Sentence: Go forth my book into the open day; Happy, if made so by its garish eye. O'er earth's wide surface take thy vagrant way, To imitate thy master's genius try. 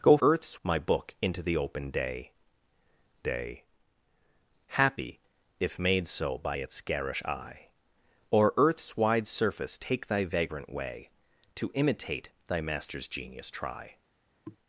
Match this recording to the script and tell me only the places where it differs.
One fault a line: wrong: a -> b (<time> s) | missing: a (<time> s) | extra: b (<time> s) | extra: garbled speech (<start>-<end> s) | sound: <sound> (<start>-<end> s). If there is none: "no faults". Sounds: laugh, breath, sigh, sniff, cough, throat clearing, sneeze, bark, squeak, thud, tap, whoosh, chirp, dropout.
wrong: forth -> earth's (0.2 s)
extra: day (3.2 s)
sound: throat clearing (14.4-14.6 s)